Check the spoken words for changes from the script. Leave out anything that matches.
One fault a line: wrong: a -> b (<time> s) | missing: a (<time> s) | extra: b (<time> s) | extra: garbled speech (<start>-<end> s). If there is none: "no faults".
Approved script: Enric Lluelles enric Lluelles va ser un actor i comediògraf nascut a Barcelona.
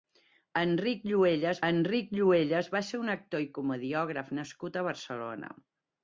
no faults